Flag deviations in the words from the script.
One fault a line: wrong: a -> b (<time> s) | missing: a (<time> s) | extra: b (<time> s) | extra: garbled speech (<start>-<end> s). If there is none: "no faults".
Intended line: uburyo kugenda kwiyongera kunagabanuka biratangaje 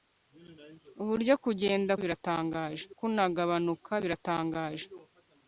wrong: kwiyongera -> biratangaje (2.0 s)